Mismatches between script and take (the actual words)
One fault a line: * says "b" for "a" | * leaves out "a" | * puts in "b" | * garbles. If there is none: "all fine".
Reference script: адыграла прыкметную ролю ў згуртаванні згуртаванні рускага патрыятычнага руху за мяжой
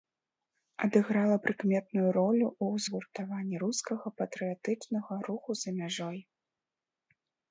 * leaves out "згуртаванні"